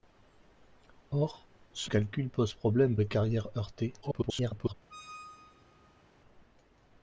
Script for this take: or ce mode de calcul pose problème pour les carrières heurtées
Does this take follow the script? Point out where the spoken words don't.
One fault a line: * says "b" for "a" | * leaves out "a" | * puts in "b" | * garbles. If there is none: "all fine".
* leaves out "mode de"
* leaves out "pour"
* garbles